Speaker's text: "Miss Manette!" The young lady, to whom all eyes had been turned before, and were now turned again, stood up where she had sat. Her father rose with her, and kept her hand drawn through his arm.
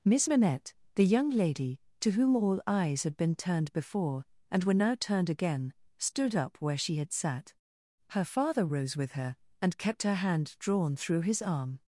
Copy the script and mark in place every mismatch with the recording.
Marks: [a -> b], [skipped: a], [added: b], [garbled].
"Miss Manette!" The young lady, to whom all eyes had been turned before, and were now turned again, stood up where she had sat. Her father rose with her, and kept her hand drawn through his arm.